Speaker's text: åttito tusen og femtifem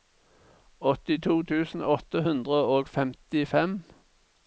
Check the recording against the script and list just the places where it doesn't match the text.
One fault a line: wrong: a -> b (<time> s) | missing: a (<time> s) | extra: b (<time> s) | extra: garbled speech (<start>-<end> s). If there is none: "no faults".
extra: åtte hundre (2.0 s)